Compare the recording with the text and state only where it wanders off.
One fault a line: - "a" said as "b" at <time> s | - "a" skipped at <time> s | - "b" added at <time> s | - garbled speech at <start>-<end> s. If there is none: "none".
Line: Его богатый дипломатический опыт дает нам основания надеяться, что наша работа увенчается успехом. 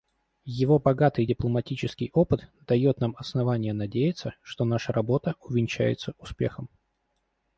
none